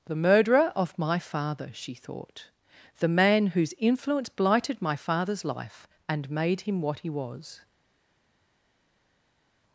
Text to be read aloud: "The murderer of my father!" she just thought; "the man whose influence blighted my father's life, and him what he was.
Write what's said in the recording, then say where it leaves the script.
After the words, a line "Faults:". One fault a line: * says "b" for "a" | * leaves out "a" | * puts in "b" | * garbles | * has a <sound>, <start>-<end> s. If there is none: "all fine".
"The murderer of my father!" she thought; "the man whose influence blighted my father's life, and made him what he was.
Faults:
* leaves out "just"
* puts in "made"